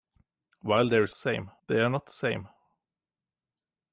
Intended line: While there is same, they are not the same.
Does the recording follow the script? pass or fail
pass